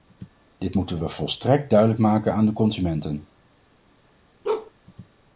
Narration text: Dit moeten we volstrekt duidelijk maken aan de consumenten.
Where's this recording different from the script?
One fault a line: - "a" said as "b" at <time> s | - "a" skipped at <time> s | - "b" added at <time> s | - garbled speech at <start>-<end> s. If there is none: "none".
none